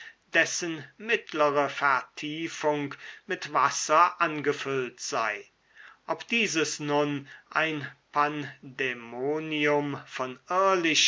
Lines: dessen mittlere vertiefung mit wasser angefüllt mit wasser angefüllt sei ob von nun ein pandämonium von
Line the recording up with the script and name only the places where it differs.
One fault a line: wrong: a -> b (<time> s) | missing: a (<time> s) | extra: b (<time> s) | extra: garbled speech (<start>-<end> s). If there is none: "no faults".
missing: mit wasser angefüllt (5.0 s)
wrong: von -> dieses (6.3 s)